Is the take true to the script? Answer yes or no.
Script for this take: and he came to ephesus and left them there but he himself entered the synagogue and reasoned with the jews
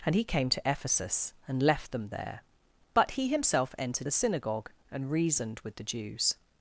yes